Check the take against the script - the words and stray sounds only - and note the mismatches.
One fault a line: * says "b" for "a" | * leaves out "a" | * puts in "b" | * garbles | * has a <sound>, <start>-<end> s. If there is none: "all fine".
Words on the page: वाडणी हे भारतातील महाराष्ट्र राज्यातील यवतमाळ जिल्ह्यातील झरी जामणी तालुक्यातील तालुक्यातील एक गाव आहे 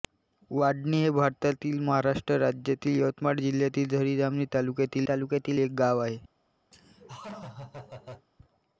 * has a laugh, 6.7-8.3 s